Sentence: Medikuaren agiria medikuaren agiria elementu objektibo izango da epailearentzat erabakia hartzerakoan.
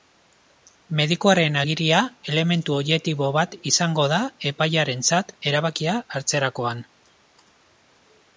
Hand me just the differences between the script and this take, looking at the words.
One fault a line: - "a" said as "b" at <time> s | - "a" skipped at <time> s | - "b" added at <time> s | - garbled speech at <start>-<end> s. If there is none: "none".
- "medikuaren agiria" skipped at 2.0 s
- "bat" added at 3.4 s